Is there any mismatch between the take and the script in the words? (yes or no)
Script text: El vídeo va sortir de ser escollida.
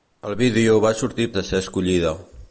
no